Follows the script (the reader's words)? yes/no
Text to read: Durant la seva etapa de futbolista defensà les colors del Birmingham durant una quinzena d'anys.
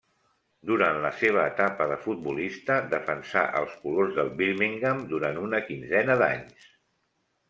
no